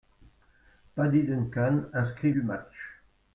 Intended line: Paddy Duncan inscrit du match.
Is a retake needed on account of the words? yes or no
no